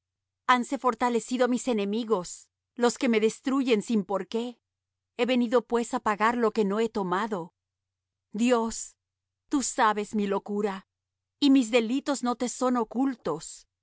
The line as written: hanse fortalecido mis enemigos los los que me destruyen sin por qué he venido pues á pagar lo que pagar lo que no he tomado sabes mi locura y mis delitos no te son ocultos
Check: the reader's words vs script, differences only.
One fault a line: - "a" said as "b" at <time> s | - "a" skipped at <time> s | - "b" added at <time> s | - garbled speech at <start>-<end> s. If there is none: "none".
- "los" skipped at 3.0 s
- "pagar lo que" skipped at 6.7 s
- "dios tú" added at 8.3 s